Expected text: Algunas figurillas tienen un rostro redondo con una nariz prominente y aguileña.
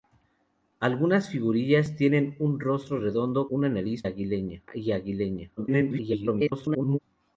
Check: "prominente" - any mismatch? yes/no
yes